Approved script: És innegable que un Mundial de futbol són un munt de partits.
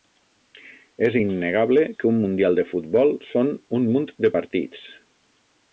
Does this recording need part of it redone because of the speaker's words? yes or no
no